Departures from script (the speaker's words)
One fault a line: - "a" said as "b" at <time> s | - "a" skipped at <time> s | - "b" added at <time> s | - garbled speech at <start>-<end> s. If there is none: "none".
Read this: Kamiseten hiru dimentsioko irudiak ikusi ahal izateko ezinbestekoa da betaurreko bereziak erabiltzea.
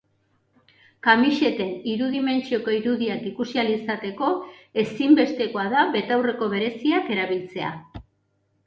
none